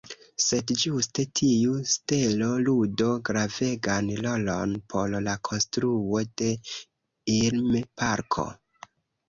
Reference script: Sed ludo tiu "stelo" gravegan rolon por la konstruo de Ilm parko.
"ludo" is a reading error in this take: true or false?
true